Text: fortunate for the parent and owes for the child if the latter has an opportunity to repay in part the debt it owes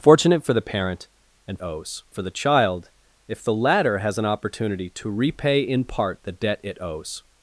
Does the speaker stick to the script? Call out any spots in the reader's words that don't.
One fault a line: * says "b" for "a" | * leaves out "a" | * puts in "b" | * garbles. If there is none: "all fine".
all fine